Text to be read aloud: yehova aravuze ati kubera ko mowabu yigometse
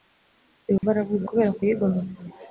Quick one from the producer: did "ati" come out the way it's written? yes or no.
no